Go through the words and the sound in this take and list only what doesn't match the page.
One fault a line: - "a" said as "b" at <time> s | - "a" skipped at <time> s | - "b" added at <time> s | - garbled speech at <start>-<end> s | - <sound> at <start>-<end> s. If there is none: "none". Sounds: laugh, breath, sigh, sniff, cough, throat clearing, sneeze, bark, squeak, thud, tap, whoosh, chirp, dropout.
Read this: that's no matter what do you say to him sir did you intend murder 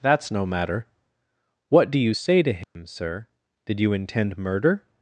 - dropout at 2.6-2.8 s